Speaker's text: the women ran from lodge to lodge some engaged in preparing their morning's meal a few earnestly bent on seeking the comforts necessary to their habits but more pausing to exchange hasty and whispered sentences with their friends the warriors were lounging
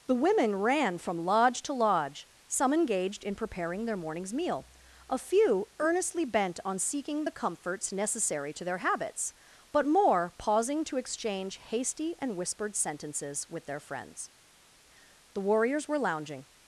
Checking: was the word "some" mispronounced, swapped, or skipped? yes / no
no